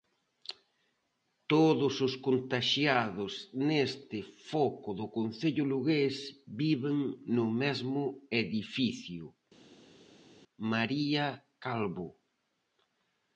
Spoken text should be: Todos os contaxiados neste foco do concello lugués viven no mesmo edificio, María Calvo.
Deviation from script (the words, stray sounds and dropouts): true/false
false